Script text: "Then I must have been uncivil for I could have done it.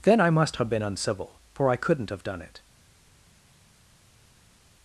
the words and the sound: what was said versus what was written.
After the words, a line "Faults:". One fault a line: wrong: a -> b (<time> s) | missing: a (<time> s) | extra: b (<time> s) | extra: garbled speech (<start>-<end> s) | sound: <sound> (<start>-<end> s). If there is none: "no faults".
"Then I must have been uncivil for I couldn't have done it.
Faults:
wrong: could -> couldn't (1.8 s)